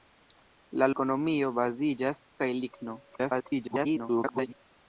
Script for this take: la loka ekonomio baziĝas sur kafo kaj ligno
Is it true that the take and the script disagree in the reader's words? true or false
true